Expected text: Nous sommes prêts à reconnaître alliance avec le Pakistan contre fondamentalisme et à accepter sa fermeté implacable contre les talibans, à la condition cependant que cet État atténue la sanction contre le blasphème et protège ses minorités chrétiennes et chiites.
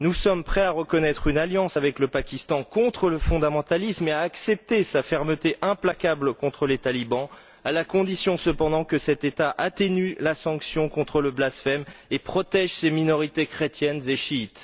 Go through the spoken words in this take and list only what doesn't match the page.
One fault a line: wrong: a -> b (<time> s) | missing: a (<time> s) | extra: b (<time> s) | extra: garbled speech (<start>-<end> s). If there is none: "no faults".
extra: une (1.3 s)
extra: le (3.1 s)